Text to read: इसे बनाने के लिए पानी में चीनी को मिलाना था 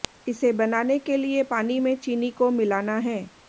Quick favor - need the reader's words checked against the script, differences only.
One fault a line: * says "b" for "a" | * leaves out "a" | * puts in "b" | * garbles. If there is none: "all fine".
* says "है" for "था"